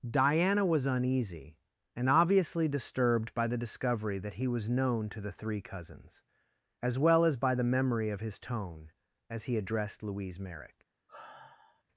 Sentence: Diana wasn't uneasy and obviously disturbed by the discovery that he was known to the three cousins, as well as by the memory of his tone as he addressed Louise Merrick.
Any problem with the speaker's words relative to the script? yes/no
yes